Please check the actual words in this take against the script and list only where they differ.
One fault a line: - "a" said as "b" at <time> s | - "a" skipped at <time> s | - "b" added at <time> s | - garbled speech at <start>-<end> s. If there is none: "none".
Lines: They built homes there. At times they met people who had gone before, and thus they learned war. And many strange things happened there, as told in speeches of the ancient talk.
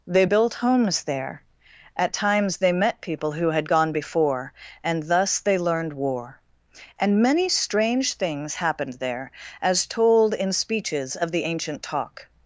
none